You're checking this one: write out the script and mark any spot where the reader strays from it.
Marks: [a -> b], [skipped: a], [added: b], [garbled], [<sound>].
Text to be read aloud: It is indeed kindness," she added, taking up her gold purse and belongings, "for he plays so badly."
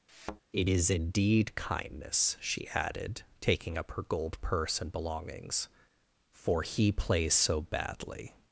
[thud] It is indeed kindness," she added, taking up her gold purse and belongings, "for he plays so badly."